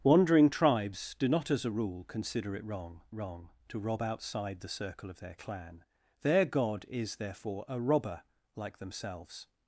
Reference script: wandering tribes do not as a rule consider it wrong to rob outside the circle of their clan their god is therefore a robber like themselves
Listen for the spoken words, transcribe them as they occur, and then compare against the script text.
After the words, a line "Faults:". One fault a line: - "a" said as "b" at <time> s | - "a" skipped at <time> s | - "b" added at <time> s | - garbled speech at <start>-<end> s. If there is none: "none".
wandering tribes do not as a rule consider it wrong wrong to rob outside the circle of their clan their god is therefore a robber like themselves
Faults:
- "wrong" added at 3.1 s